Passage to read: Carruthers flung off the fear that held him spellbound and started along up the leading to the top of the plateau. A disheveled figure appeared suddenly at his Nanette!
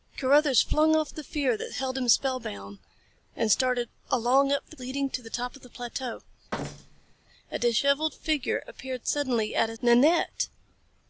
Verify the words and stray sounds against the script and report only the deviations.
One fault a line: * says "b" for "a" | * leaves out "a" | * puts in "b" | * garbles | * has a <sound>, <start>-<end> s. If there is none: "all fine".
* has a thud, 6.5-7.2 s